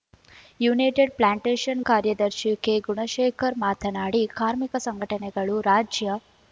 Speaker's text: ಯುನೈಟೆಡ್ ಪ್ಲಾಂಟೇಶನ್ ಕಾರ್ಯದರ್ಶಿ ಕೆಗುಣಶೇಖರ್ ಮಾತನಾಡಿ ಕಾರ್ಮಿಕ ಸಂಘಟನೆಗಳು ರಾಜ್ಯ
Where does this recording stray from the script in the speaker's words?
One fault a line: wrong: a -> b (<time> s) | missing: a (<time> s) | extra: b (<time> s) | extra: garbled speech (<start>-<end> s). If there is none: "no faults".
no faults